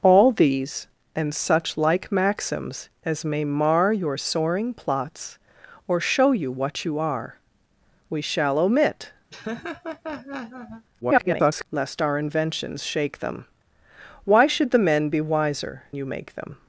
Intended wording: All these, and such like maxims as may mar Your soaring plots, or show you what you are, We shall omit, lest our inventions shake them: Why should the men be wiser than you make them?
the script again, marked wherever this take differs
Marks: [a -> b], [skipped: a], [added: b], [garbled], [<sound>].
All these, and such like maxims as may mar Your soaring plots, or show you what you are, We shall omit, [laugh] [garbled] lest our inventions shake them: Why should the men be wiser [skipped: than] you make them?